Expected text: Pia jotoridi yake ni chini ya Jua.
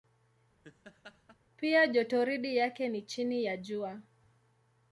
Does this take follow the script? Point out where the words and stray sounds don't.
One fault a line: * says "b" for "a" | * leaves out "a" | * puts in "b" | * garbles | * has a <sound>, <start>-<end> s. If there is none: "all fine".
* has a laugh, 0.6-1.4 s